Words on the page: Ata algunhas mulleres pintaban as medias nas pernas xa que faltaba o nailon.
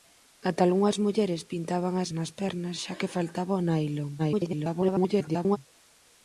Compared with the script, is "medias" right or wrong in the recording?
wrong